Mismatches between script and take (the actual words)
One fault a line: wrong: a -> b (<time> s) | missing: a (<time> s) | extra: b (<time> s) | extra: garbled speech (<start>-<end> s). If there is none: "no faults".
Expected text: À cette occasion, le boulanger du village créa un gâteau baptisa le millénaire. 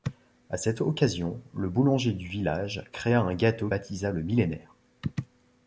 no faults